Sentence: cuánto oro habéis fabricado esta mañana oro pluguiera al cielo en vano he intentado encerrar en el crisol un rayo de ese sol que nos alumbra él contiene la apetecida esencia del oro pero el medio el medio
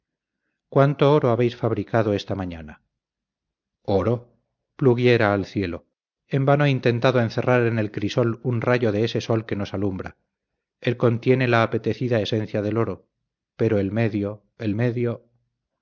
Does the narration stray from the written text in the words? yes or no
no